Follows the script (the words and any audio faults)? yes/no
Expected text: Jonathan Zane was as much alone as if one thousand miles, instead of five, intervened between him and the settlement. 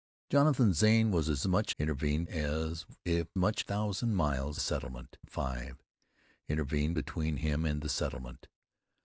no